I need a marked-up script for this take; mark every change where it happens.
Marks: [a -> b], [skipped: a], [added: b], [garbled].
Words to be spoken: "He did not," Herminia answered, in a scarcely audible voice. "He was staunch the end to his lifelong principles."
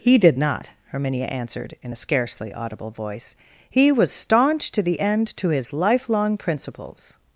"He did not," Herminia answered, in a scarcely audible voice. "He was staunch [added: to] the end to his lifelong principles."